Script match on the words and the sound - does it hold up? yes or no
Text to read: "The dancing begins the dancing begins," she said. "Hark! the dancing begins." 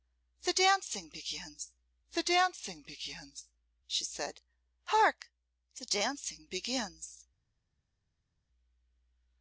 yes